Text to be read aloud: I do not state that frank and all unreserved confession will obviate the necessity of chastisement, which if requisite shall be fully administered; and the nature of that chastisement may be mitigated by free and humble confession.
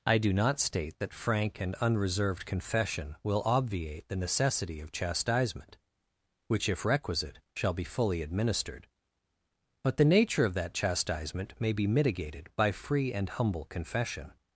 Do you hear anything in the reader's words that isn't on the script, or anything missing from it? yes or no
yes